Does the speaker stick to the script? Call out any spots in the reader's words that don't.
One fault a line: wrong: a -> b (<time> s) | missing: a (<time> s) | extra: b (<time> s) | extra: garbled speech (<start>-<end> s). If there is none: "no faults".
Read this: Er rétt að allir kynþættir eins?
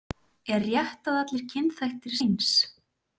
no faults